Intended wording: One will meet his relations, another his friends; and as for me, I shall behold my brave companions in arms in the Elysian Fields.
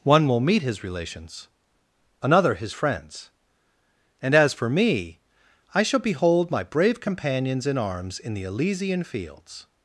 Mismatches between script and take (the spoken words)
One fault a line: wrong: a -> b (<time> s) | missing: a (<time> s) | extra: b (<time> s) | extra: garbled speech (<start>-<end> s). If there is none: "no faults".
no faults